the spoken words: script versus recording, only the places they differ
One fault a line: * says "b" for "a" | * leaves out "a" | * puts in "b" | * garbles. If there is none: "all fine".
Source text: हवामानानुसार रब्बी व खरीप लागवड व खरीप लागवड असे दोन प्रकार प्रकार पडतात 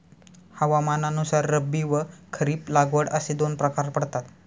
* leaves out "व खरीप लागवड"
* leaves out "प्रकार"